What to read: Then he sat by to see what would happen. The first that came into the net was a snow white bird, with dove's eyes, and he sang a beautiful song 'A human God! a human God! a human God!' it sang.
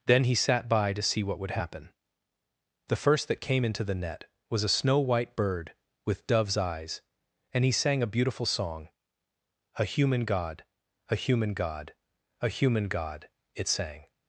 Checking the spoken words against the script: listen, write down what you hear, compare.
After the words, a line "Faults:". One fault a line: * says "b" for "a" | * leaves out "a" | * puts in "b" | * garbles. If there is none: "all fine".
Then he sat by to see what would happen. The first that came into the net was a snow white bird, with dove's eyes, and he sang a beautiful song 'A human God! a human God! a human God!' it sang.
Faults:
all fine